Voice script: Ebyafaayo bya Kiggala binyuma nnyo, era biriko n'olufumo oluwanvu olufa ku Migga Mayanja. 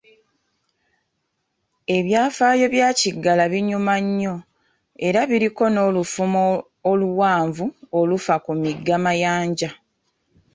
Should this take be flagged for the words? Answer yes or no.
no